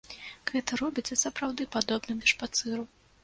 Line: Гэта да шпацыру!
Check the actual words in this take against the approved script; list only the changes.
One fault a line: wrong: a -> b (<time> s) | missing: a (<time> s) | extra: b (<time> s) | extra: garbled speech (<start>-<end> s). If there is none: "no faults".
extra: робіцца сапраўды падобным (0.8 s)